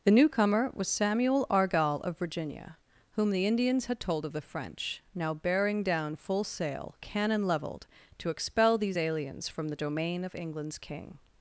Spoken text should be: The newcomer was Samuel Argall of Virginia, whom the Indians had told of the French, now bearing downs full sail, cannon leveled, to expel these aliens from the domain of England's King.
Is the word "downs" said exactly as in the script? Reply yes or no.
no